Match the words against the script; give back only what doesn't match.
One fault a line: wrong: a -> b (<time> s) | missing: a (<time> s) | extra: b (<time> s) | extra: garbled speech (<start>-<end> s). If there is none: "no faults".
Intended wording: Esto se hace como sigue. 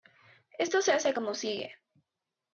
no faults